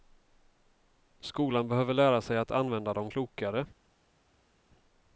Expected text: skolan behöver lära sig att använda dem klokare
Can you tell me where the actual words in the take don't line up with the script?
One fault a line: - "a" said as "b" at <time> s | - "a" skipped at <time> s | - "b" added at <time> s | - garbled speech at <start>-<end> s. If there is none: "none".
none